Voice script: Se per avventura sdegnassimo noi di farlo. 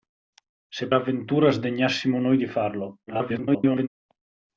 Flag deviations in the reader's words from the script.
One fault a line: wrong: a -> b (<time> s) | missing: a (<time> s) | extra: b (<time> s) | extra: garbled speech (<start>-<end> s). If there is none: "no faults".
missing: per (0.9 s)
extra: garbled speech (3.1-3.9 s)